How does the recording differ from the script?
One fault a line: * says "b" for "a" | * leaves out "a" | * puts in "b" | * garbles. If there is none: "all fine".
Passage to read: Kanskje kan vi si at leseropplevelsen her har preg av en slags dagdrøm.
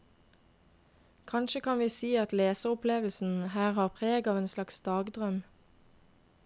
all fine